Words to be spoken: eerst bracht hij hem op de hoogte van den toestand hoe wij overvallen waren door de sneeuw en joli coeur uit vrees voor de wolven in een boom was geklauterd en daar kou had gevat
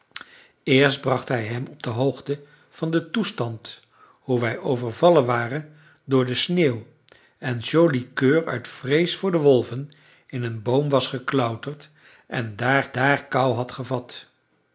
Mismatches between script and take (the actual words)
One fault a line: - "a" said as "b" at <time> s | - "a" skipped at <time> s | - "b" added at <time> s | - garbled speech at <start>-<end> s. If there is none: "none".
- "daar" added at 12.9 s